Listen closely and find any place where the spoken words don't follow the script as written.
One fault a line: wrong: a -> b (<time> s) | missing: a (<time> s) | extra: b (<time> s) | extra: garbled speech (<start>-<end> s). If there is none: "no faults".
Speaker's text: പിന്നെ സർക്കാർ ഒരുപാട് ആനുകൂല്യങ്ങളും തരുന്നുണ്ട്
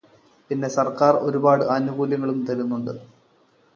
no faults